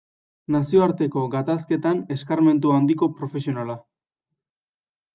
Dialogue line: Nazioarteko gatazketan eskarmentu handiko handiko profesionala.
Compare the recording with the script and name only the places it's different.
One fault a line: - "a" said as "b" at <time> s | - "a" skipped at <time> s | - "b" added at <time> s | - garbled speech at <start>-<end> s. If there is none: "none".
- "handiko" skipped at 3.1 s